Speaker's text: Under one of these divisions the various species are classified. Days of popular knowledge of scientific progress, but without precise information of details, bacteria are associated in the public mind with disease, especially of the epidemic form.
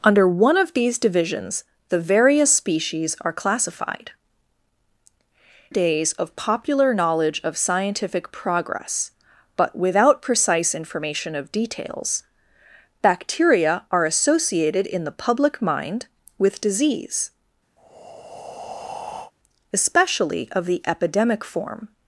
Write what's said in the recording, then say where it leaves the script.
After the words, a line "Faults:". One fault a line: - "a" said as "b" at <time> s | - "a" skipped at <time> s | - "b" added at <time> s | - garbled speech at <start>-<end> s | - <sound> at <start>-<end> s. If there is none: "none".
Under one of these divisions the various species are classified. Days of popular knowledge of scientific progress, but without precise information of details, bacteria are associated in the public mind with disease, especially of the epidemic form.
Faults:
- breath at 17.8-19.3 s